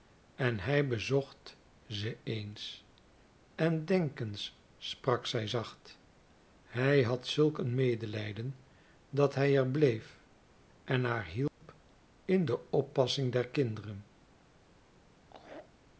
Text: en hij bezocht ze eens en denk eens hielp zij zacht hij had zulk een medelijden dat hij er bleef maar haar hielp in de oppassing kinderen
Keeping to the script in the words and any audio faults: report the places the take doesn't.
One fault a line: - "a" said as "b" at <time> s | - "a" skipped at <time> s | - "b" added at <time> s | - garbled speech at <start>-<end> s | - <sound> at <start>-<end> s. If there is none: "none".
- "hielp" said as "sprak" at 4.8 s
- "maar" said as "en" at 10.8 s
- dropout at 11.5-11.6 s
- "der" added at 13.3 s
- laugh at 15.2-15.7 s